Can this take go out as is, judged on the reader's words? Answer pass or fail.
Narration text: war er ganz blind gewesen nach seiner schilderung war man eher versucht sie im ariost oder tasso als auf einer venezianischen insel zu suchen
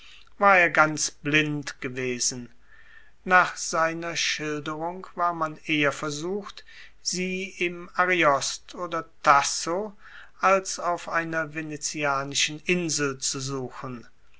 pass